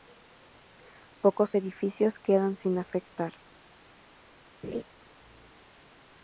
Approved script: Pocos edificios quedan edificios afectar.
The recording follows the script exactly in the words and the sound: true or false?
false